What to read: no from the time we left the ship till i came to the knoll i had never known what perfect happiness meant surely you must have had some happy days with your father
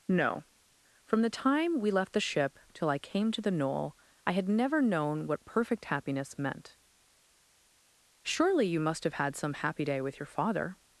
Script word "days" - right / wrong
wrong